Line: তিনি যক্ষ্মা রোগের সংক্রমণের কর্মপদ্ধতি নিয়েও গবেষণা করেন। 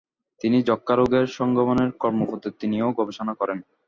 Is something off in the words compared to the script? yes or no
no